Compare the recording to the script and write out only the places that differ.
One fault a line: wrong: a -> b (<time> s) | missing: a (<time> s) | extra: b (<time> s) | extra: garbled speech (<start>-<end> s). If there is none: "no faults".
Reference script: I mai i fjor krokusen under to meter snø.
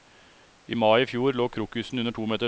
extra: lå (1.3 s)